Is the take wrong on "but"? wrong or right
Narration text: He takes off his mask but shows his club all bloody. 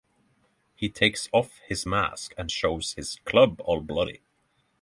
wrong